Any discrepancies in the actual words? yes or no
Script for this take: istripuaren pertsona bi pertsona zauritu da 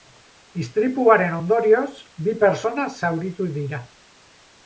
yes